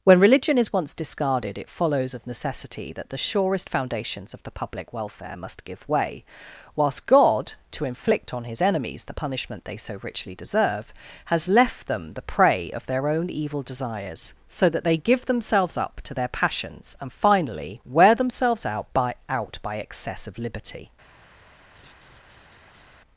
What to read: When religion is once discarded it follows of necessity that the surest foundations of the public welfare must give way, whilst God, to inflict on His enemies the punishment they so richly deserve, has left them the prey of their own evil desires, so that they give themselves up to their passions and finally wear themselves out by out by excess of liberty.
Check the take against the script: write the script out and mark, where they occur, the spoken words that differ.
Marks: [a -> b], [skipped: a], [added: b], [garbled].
When religion is once discarded it follows of necessity that the surest foundations of the public welfare must give way, whilst God, to inflict on His enemies the punishment they so richly deserve, has left them the prey of their own evil desires, so that they give themselves up to their passions and finally wear themselves out by out by excess of liberty.